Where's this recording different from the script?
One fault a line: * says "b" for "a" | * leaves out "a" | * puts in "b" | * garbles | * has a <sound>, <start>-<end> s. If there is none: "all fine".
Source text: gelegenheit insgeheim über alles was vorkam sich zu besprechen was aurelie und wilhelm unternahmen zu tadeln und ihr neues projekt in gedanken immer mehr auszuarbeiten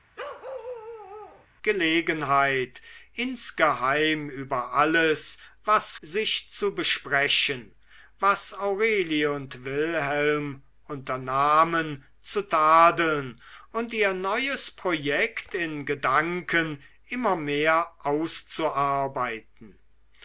* has a bark, 0.2-1.5 s
* leaves out "vorkam"